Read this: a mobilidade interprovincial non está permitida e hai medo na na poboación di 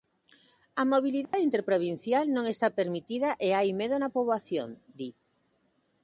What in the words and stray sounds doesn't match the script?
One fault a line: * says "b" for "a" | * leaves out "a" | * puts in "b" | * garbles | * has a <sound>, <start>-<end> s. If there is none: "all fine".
* has a dropout, 1.3-1.3 s
* leaves out "na"